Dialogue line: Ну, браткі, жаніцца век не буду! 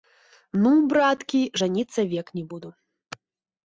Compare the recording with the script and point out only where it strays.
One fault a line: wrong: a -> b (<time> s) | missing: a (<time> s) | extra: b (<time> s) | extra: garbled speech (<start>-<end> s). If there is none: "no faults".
no faults